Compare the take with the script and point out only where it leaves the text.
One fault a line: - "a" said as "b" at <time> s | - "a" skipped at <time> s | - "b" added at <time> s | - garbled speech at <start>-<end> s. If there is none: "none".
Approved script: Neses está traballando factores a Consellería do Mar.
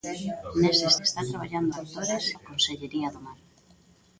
none